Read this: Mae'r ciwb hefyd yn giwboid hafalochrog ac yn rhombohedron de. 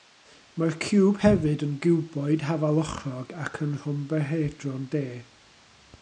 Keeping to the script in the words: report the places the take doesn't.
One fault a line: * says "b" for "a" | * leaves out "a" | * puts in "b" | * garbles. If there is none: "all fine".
all fine